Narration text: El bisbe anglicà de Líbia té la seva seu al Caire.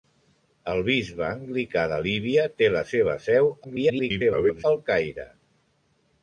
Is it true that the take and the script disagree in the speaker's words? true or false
true